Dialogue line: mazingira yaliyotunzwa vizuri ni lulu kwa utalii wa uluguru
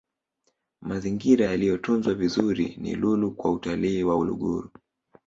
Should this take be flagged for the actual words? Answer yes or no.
no